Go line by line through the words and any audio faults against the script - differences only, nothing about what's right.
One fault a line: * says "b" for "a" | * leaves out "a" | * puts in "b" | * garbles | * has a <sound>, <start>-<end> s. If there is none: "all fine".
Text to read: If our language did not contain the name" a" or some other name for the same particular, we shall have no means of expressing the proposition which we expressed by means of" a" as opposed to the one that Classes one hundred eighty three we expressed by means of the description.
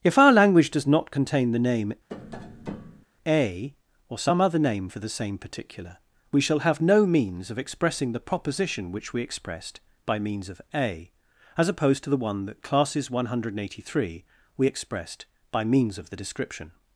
* says "does" for "did"
* has a tap, 2.1-3.1 s